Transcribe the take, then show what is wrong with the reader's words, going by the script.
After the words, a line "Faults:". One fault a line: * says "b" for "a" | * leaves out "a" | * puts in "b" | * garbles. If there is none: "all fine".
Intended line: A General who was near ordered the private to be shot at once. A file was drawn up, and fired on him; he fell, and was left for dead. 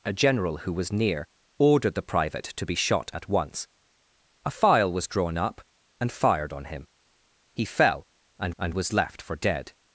A General who was near ordered the private to be shot at once. A file was drawn up, and fired on him; he fell, and and was left for dead.
Faults:
* puts in "and"